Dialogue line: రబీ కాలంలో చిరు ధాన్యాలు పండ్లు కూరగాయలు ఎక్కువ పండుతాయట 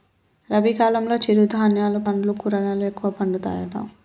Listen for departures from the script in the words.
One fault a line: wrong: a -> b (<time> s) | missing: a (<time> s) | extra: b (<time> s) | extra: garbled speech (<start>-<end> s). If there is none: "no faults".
no faults